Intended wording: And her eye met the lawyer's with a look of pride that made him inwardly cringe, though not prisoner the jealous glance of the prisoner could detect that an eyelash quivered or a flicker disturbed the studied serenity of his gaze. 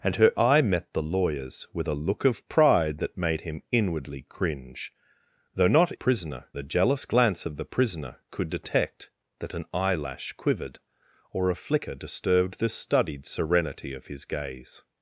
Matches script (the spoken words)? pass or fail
pass